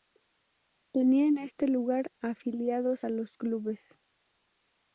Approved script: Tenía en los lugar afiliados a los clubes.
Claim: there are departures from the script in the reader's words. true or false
true